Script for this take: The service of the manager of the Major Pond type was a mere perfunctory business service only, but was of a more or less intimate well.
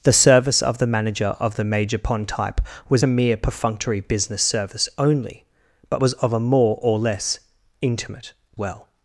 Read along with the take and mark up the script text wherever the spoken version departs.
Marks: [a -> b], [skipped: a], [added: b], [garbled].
The service of the manager of the Major Pond type was a mere perfunctory business service only, but was of a more or less intimate well.